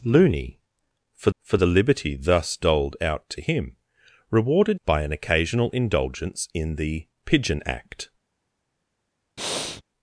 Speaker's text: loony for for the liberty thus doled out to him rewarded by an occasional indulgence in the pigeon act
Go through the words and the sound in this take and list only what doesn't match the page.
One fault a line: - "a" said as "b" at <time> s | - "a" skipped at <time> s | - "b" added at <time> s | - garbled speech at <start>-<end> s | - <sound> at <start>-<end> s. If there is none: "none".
- breath at 9.4-9.8 s